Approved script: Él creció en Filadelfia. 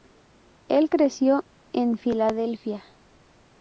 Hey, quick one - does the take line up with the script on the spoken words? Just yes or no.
yes